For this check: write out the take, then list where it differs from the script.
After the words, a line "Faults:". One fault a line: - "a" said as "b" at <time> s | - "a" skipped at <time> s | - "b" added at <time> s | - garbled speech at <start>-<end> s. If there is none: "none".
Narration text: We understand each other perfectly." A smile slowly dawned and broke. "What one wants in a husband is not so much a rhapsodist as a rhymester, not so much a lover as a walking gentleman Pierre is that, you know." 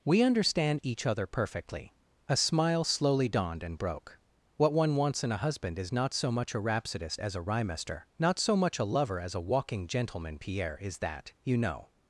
We understand each other perfectly." A smile slowly dawned and broke. "What one wants in a husband is not so much a rhapsodist as a rhymester, not so much a lover as a walking gentleman Pierre is that, you know."
Faults:
none